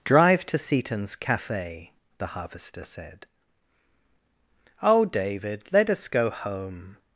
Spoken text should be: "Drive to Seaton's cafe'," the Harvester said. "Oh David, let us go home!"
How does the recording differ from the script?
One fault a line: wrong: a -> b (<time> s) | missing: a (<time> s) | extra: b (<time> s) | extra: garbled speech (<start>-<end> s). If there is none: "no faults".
no faults